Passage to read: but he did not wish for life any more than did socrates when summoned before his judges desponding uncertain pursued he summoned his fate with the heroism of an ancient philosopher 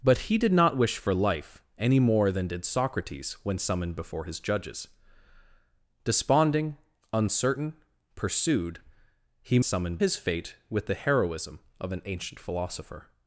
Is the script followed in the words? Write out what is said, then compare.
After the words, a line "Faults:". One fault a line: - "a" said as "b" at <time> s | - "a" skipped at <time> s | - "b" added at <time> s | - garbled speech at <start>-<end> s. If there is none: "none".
but he did not wish for life any more than did socrates when summoned before his judges desponding uncertain pursued he summoned his fate with the heroism of an ancient philosopher
Faults:
none